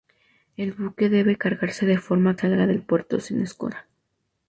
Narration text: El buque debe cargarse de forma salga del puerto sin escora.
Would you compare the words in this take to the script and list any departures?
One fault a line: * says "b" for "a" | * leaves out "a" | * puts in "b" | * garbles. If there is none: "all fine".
all fine